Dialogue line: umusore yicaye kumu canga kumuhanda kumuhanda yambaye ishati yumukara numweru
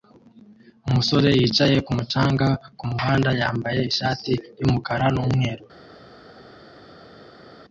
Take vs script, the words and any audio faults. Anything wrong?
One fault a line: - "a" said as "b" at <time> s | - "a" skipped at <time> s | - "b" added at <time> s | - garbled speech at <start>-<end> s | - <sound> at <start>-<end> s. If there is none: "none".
- "kumuhanda" skipped at 3.3 s